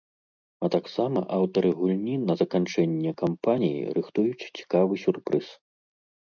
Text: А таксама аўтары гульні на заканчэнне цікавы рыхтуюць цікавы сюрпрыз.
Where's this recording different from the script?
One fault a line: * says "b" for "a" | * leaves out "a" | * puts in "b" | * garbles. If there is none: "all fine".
* says "кампаніі" for "цікавы"